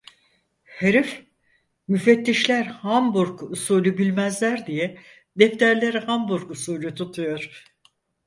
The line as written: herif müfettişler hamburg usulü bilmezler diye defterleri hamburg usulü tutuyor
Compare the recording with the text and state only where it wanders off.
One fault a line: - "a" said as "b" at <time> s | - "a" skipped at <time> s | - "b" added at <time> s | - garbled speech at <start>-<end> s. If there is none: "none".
none